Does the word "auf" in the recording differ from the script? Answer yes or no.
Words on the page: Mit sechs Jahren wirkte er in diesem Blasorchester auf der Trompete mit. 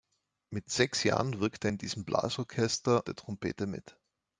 yes